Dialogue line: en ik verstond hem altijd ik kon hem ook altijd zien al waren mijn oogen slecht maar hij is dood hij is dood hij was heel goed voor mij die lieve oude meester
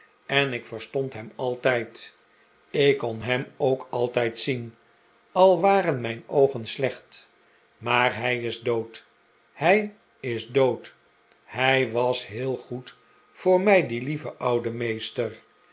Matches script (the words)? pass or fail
pass